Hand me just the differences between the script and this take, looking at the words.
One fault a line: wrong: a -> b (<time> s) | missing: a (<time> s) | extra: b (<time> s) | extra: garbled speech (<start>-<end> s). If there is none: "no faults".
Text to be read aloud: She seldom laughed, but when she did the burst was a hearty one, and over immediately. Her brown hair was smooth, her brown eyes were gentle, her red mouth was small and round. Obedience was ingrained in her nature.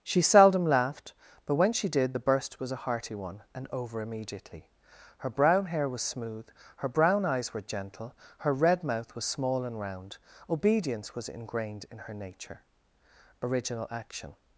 extra: Original action (13.4 s)